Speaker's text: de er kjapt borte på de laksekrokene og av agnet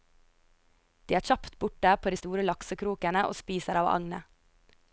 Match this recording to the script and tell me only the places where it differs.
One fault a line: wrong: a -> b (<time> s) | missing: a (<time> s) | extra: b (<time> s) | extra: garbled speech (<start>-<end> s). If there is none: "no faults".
extra: store (2.2 s)
extra: spiser (3.4 s)